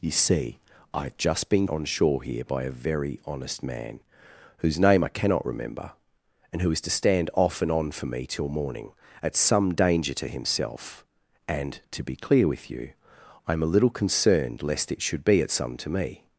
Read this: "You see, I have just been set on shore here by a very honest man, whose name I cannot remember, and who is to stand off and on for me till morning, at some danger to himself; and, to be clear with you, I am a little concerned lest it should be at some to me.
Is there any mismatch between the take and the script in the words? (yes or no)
yes